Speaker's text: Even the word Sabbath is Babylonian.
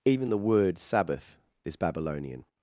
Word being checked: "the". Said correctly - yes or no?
yes